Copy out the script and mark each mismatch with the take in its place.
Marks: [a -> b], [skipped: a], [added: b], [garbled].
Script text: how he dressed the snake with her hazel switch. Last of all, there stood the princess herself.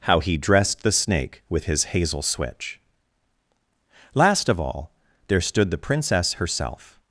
how he dressed the snake with [her -> his] hazel switch. Last of all, there stood the princess herself.